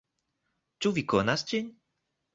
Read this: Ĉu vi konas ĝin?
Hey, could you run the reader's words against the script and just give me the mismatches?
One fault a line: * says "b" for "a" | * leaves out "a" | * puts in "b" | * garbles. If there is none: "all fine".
all fine